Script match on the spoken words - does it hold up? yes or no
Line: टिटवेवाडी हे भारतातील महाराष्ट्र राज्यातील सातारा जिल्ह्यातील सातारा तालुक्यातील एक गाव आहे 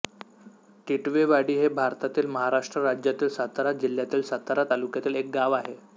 yes